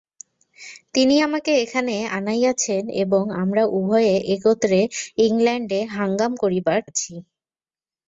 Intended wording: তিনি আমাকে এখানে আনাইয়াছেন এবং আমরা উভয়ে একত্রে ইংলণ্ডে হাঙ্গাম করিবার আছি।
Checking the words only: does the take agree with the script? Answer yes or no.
yes